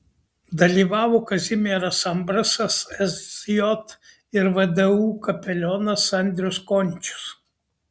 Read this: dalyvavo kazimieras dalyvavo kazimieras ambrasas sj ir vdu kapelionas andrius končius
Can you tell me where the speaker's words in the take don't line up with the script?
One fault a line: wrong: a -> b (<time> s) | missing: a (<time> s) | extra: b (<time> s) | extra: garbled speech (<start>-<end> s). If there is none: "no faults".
missing: dalyvavo kazimieras (2.0 s)